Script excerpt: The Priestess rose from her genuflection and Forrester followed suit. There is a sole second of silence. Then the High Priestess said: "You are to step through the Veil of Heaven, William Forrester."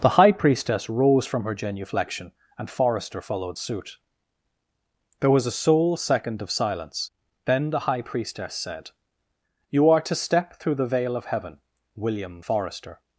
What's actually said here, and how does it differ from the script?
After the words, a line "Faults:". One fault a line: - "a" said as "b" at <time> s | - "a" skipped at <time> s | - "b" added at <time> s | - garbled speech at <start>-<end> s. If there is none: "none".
The High Priestess rose from her genuflection and Forrester followed suit. There was a sole second of silence. Then the High Priestess said: "You are to step through the Veil of Heaven, William Forrester."
Faults:
- "High" added at 0.2 s
- "is" said as "was" at 5.3 s